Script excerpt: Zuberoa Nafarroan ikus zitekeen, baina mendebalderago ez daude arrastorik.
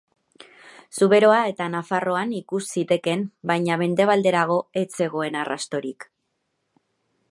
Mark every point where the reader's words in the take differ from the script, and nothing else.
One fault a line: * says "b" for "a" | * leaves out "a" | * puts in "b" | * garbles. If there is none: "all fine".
* puts in "eta"
* says "zegoen" for "daude"